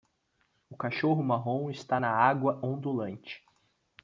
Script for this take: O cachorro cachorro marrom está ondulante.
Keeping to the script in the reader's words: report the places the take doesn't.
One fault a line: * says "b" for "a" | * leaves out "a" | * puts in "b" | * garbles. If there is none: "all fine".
* leaves out "cachorro"
* puts in "na água"